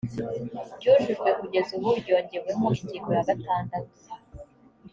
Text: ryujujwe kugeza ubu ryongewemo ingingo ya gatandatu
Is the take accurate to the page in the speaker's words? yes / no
yes